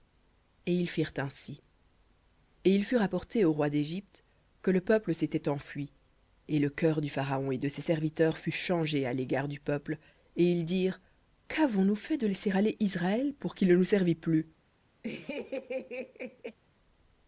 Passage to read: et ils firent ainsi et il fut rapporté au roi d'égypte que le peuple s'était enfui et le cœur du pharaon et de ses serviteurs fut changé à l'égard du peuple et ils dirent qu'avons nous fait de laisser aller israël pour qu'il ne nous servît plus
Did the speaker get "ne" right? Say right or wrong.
right